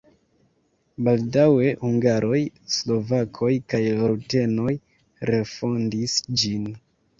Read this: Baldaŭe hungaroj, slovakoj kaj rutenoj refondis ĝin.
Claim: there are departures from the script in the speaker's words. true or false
false